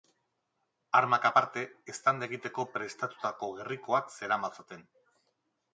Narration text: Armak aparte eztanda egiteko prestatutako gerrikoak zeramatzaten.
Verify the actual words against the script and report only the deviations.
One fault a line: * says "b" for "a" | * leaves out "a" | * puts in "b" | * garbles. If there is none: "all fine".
all fine